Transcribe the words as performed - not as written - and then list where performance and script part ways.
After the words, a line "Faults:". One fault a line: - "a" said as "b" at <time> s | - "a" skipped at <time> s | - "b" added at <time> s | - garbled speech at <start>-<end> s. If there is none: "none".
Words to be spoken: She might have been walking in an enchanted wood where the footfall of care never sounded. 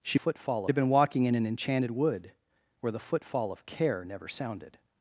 She footfall have been walking in an enchanted wood where the footfall of care never sounded.
Faults:
- "might" said as "footfall" at 0.1 s